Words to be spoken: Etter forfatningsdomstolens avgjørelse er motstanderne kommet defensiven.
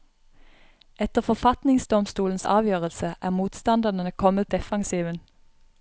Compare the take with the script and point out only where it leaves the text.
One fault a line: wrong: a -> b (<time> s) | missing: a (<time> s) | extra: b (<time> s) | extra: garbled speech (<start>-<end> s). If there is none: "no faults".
no faults